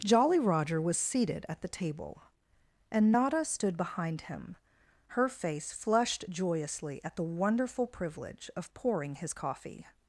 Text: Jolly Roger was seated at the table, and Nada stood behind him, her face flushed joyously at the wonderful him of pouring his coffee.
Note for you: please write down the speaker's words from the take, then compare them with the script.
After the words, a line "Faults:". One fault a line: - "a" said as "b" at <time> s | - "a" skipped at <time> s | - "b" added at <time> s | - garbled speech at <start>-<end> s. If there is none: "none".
Jolly Roger was seated at the table, and Nada stood behind him, her face flushed joyously at the wonderful privilege of pouring his coffee.
Faults:
- "him" said as "privilege" at 7.9 s